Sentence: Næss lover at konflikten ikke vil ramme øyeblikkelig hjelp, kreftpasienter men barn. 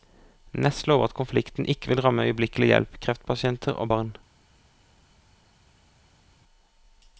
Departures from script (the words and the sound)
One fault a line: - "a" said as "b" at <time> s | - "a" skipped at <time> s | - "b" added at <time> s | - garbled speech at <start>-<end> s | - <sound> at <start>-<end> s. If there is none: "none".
- "men" said as "og" at 3.7 s